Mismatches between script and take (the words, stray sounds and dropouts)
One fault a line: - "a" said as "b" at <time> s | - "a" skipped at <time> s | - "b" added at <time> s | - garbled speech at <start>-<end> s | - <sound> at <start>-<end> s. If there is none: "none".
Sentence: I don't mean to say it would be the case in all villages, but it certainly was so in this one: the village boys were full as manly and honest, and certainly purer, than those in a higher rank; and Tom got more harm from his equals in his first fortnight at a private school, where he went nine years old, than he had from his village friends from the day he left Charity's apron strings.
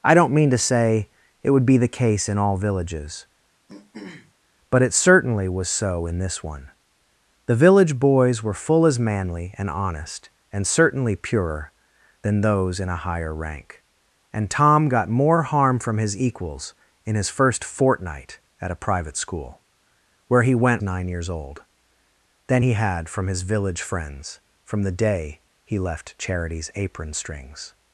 - throat clearing at 3.7-4.3 s